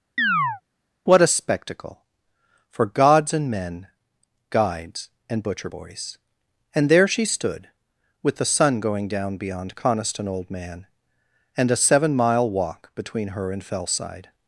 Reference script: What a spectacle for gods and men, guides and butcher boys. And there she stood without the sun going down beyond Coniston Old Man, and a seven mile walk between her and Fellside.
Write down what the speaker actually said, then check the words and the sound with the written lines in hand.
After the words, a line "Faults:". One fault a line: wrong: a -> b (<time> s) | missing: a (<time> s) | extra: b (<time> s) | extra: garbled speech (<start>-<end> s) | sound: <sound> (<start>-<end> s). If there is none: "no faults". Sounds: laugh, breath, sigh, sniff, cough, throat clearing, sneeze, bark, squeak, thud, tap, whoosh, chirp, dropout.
What a spectacle for gods and men, guides and butcher boys. And there she stood with the sun going down beyond Coniston Old Man, and a seven mile walk between her and Fellside.
Faults:
sound: chirp (0.2-0.6 s)
wrong: without -> with (8.2 s)